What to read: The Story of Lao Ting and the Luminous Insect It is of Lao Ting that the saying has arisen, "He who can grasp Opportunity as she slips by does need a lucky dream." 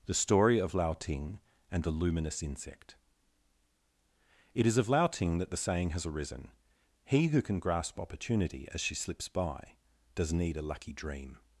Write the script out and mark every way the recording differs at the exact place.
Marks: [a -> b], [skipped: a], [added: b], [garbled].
The Story of Lao Ting and the Luminous Insect It is of Lao Ting that the saying has arisen, "He who can grasp Opportunity as she slips by does need a lucky dream."